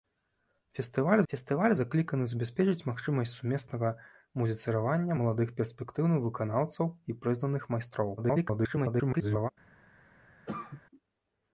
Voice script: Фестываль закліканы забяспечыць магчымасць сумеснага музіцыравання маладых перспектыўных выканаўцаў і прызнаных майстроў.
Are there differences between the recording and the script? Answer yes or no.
yes